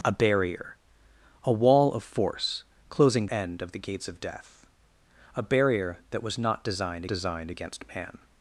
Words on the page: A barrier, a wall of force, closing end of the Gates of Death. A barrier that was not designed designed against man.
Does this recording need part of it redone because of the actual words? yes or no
no